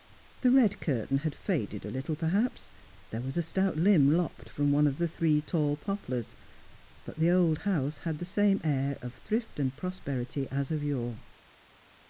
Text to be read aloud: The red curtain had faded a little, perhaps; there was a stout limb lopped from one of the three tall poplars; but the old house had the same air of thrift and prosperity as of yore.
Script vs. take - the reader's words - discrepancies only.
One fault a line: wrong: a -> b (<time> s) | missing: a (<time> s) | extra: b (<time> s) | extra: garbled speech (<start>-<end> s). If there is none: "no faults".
no faults